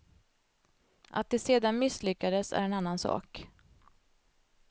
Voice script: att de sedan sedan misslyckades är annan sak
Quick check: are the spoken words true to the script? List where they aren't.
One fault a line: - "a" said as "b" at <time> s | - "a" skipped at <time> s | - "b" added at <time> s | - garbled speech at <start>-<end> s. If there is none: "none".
- "sedan" skipped at 1.8 s
- "en" added at 2.6 s